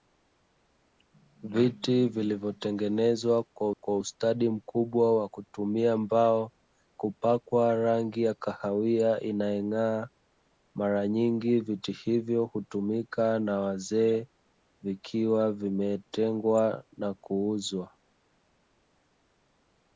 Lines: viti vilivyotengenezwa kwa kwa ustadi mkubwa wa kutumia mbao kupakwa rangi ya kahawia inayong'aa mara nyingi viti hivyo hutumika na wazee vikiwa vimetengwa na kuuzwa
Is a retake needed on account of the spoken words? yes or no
no